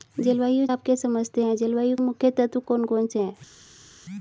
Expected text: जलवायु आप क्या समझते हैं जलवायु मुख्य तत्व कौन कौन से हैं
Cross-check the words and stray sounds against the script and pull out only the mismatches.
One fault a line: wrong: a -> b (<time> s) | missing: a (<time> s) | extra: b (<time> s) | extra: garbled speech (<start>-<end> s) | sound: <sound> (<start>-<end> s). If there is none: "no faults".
no faults